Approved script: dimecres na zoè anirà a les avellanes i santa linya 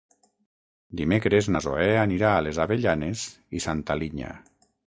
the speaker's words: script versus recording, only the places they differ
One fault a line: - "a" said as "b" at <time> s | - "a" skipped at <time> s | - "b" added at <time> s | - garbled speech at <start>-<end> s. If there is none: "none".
none